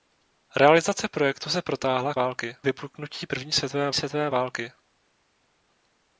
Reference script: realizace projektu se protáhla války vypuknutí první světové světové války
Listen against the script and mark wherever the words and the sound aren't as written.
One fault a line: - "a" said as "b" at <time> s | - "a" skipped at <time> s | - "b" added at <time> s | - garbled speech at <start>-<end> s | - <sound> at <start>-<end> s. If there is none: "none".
none